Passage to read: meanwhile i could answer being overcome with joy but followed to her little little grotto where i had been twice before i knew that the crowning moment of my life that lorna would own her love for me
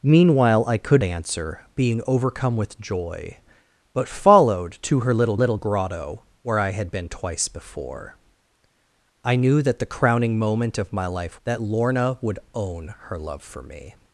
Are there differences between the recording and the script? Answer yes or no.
no